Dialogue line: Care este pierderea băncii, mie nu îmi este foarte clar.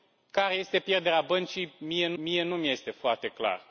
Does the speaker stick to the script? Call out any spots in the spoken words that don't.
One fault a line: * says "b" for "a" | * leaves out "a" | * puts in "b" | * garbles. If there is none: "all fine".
* puts in "mie nu"